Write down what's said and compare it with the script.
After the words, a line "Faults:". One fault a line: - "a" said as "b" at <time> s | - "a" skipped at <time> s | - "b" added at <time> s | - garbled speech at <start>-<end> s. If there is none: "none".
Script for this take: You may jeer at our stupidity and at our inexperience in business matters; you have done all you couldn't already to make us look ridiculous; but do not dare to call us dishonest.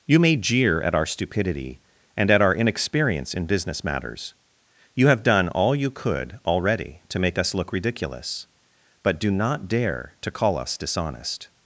You may jeer at our stupidity and at our inexperience in business matters; you have done all you could already to make us look ridiculous; but do not dare to call us dishonest.
Faults:
- "couldn't" said as "could" at 5.9 s